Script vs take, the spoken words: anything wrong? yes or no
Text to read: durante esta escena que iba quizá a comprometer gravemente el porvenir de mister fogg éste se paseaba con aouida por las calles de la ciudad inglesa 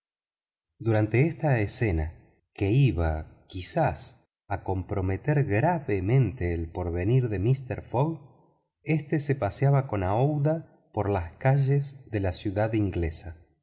no